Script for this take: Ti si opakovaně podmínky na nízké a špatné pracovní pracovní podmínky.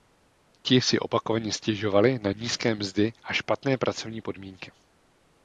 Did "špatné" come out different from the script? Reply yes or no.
no